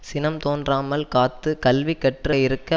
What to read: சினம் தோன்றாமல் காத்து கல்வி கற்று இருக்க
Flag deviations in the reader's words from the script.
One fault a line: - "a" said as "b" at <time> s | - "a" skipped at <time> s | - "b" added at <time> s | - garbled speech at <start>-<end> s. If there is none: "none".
none